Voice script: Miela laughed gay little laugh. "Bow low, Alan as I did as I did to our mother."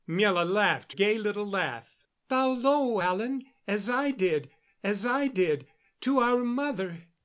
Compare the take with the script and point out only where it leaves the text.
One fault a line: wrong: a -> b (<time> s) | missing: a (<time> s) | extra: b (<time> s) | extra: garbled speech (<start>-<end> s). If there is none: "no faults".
no faults